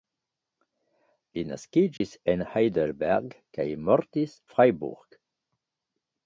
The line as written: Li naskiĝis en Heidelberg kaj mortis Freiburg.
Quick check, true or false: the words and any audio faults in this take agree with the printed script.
false